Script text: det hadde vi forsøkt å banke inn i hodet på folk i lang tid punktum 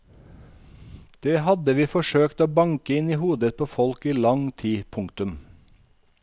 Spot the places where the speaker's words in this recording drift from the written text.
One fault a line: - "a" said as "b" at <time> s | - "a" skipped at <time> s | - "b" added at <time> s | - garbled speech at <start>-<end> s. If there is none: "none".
none